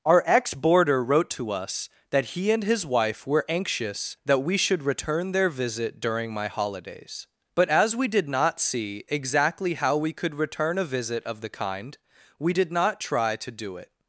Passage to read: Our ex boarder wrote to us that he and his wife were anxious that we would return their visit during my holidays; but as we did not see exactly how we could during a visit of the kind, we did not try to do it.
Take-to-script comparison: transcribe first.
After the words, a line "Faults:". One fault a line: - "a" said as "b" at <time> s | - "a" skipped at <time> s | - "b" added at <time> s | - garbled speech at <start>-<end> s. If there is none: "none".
Our ex boarder wrote to us that he and his wife were anxious that we should return their visit during my holidays; but as we did not see exactly how we could return a visit of the kind, we did not try to do it.
Faults:
- "would" said as "should" at 4.6 s
- "during" said as "return" at 10.3 s